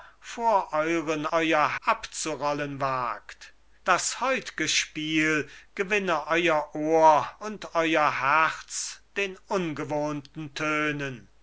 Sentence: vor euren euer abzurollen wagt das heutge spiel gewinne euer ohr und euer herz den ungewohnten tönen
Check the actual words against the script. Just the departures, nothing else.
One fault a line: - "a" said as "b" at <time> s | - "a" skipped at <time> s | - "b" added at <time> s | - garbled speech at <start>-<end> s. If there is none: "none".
none